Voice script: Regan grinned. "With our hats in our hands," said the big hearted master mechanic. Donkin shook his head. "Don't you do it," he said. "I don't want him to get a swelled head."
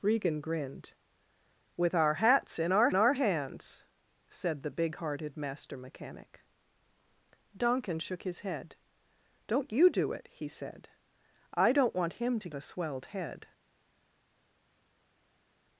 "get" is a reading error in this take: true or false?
true